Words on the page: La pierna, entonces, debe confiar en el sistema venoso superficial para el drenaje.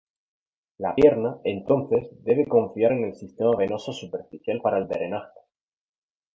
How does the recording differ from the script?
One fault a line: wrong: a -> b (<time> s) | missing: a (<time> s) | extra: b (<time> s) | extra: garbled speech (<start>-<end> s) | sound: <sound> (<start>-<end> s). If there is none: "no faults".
no faults